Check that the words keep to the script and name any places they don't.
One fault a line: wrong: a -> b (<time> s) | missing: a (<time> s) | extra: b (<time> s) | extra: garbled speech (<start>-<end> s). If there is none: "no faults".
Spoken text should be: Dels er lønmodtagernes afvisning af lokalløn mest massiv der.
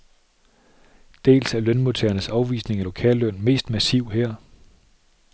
wrong: der -> her (4.1 s)